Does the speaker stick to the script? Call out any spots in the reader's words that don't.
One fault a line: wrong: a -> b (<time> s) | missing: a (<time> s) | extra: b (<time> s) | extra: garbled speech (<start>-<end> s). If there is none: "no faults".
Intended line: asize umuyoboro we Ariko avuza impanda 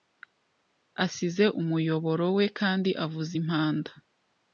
wrong: Ariko -> Kandi (2.6 s)